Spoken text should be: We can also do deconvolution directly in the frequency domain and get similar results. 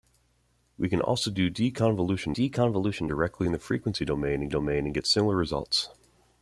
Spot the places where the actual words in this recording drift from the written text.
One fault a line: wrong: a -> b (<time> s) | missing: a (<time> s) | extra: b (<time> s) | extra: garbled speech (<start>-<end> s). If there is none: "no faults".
extra: deconvolution (2.3 s)
extra: domain and (4.5 s)